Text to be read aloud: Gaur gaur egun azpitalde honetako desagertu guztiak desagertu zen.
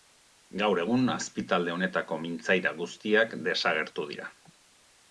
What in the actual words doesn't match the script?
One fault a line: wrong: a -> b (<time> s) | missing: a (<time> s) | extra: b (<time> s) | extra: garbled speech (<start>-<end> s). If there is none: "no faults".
missing: gaur (0.8 s)
wrong: desagertu -> mintzaira (2.3 s)
wrong: zen -> dira (4.1 s)